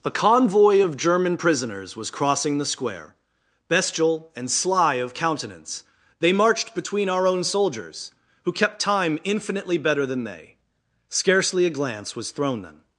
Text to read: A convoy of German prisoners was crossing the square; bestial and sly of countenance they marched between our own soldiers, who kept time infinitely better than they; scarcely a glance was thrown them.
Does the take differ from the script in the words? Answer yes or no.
no